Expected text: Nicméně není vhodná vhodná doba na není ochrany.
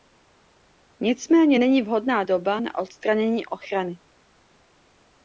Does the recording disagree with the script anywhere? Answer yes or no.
yes